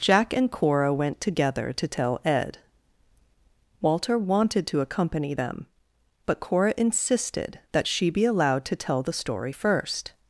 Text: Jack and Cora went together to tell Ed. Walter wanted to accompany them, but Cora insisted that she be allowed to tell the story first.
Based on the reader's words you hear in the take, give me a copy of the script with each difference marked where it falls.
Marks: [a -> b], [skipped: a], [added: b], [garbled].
Jack and Cora went together to tell Ed. Walter wanted to accompany them, but Cora insisted that she be allowed to tell the story first.